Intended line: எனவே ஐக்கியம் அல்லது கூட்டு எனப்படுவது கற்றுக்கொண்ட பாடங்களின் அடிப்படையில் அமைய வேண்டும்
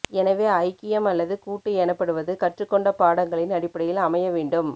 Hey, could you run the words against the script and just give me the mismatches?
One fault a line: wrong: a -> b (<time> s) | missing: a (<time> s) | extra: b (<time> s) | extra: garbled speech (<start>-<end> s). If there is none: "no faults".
no faults